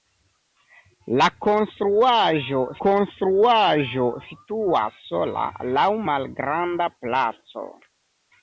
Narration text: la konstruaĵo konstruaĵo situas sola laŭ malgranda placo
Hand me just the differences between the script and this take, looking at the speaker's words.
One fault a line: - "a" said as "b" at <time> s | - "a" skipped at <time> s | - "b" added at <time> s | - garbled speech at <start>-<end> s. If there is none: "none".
none